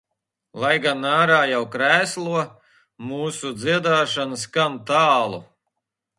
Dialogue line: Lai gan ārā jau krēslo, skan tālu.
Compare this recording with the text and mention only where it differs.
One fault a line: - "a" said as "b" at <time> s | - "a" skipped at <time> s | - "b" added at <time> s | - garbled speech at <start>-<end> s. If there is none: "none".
- "mūsu dziedāšana" added at 3.1 s